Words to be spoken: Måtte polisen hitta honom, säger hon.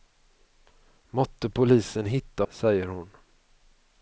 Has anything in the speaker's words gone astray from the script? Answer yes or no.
yes